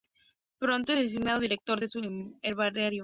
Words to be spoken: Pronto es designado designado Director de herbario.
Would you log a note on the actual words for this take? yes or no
yes